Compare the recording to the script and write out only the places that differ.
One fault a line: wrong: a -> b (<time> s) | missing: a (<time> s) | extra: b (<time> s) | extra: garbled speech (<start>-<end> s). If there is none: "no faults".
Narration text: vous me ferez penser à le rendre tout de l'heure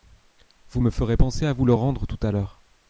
extra: vous (1.5 s)
wrong: de -> à (2.2 s)